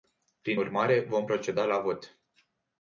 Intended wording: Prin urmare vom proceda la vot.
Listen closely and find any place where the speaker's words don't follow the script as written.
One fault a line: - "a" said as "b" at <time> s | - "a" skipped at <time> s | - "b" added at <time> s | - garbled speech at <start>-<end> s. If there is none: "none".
none